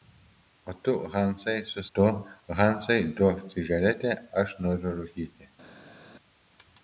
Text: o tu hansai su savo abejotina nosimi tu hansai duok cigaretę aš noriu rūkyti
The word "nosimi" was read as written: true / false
false